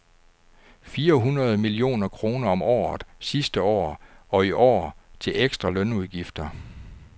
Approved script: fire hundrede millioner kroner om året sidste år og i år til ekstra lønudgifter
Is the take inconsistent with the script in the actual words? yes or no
no